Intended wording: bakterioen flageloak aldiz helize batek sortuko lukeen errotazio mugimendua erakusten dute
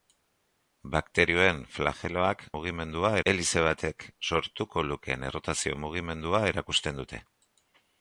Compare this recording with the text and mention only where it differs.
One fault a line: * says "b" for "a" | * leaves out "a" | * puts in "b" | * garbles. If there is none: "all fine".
* says "mugimendua" for "aldiz"